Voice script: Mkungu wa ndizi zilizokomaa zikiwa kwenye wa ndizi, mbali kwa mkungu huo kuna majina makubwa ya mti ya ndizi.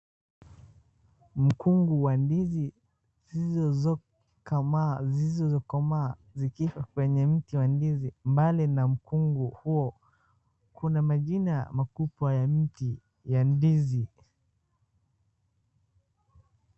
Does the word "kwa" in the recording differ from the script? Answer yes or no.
yes